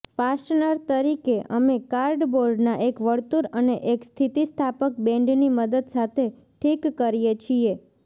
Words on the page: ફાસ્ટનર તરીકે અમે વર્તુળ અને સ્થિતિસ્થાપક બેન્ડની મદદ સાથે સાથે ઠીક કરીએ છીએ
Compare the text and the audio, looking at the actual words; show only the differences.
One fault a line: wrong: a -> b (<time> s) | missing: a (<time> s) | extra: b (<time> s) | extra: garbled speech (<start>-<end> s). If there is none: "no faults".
extra: કાર્ડબોર્ડના એક (1.9 s)
extra: એક (3.9 s)
missing: સાથે (6.3 s)